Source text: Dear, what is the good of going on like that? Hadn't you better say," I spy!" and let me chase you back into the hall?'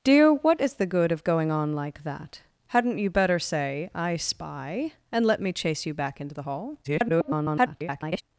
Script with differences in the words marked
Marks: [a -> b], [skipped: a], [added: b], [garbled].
Dear, what is the good of going on like that? Hadn't you better say," I spy!" and let me chase you back into the hall?' [garbled]